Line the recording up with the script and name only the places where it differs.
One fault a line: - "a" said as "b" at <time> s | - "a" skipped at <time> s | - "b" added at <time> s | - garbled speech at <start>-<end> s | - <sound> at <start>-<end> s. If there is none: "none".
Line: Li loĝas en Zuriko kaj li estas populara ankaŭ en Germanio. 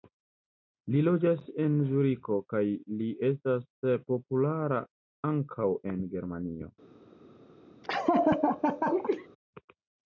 - laugh at 7.8-9.3 s